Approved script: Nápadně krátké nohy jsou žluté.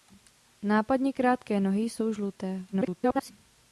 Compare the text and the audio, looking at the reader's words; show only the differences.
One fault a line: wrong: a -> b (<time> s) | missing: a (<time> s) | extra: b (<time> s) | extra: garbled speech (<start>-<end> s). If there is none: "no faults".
extra: garbled speech (2.7-3.3 s)